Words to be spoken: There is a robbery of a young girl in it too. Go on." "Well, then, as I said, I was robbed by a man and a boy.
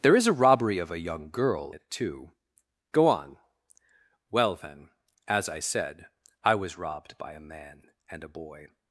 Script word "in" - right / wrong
wrong